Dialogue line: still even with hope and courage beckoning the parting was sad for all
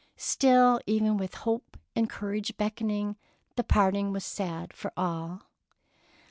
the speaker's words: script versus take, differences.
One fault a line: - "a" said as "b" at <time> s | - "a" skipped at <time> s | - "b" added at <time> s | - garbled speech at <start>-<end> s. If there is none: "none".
none